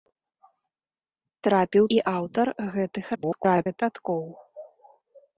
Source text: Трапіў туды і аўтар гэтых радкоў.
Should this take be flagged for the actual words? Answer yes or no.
yes